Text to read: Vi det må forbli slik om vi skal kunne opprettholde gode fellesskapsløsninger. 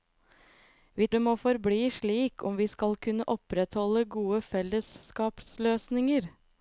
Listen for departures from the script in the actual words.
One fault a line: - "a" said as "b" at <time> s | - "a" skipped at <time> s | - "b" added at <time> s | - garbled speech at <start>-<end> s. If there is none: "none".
none